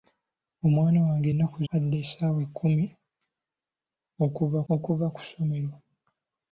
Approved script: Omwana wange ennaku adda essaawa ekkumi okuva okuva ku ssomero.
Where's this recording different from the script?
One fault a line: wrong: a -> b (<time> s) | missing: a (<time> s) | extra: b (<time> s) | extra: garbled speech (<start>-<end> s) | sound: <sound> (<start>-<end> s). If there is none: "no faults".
no faults